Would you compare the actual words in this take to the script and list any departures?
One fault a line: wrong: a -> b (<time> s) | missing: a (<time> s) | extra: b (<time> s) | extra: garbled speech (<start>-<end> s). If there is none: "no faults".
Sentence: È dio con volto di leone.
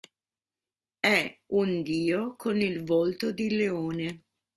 extra: un (1.5 s)
extra: il (2.6 s)